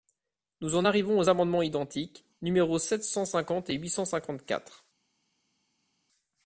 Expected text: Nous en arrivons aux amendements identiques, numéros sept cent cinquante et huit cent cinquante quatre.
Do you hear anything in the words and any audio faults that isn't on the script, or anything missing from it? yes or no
no